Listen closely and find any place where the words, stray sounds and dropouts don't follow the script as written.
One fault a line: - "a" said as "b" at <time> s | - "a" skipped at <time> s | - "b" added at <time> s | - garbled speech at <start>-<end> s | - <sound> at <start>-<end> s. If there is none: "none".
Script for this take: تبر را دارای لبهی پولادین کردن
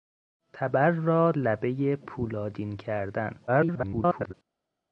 - "دارای" skipped at 1.3 s
- garbled speech at 3.5-4.3 s